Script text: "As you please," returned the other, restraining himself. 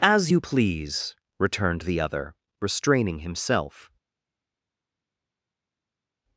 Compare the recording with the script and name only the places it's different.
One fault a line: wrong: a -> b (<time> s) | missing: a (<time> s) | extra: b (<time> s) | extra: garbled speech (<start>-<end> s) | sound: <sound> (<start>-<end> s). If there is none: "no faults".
no faults